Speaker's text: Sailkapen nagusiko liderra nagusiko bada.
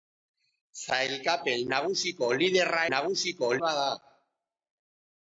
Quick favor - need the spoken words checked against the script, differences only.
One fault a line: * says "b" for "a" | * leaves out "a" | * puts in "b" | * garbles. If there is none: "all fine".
all fine